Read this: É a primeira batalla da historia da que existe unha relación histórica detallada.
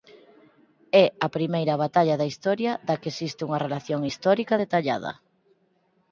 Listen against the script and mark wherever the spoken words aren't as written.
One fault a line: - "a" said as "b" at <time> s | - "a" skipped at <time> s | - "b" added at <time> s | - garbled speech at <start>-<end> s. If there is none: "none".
none